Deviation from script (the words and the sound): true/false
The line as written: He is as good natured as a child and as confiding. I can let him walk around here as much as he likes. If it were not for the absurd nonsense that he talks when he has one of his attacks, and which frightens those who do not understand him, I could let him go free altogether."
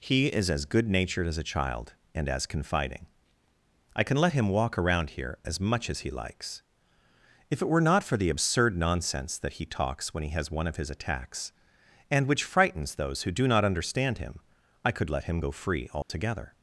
true